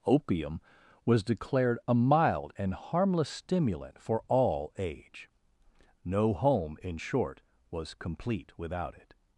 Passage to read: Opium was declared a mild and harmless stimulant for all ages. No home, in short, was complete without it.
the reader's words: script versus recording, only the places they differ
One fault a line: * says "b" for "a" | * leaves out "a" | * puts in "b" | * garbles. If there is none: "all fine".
* says "age" for "ages"